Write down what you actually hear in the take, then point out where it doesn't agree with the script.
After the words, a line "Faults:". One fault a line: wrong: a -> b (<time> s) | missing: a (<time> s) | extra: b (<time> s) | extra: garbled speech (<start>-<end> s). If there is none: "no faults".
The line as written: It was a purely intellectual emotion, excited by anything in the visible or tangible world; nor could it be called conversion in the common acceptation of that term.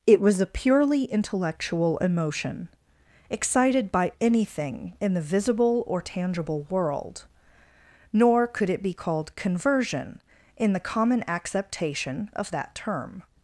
It was a purely intellectual emotion, excited by anything in the visible or tangible world; nor could it be called conversion in the common acceptation of that term.
Faults:
no faults